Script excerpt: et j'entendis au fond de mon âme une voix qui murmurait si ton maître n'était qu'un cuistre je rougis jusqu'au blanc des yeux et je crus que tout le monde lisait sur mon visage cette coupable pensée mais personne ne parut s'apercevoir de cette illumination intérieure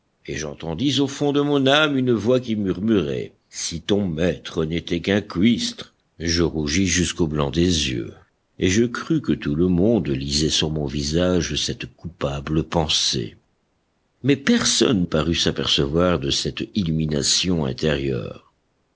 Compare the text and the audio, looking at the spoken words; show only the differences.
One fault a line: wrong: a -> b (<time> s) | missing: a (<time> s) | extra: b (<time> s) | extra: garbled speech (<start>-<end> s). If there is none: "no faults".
missing: ne (15.0 s)